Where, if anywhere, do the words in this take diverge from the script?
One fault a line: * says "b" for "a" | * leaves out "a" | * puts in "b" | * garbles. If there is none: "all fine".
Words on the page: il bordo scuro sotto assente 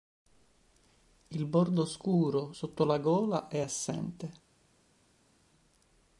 * puts in "la gola è"